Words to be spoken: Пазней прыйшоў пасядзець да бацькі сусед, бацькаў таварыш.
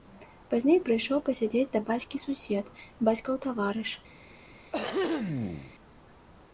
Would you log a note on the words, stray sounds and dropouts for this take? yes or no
yes